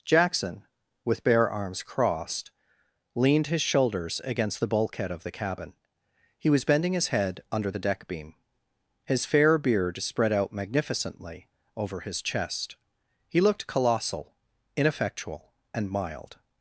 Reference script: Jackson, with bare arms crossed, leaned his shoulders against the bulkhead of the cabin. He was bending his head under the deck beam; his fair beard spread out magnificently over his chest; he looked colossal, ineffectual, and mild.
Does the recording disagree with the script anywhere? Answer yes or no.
no